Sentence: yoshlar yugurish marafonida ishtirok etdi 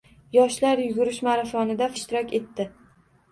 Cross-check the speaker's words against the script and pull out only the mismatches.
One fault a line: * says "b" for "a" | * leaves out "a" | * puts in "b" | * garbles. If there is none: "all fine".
all fine